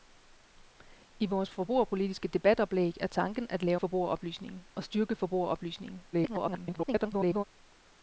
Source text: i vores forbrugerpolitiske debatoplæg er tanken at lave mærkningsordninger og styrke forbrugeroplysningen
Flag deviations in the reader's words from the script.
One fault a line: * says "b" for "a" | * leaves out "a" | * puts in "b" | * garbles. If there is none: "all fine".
* says "forbrugeroplysningen" for "mærkningsordninger"
* garbles